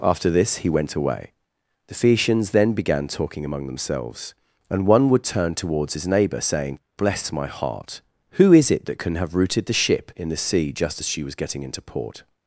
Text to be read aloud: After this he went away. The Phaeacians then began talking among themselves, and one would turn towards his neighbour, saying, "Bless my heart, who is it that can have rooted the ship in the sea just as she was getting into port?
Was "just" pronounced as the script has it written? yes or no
yes